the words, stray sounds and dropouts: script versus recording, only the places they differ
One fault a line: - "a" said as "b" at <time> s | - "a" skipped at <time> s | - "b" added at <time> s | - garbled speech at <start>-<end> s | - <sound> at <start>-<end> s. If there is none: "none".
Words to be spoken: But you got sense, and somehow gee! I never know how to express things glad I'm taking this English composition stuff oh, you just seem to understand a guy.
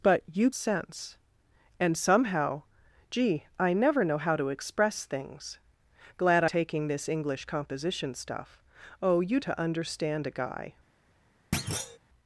- "got" skipped at 0.5 s
- "I'm" skipped at 6.4 s
- "just seem" skipped at 9.4 s
- thud at 11.5-12.0 s